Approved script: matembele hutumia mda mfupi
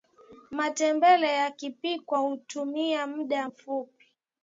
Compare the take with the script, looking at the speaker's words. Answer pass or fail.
fail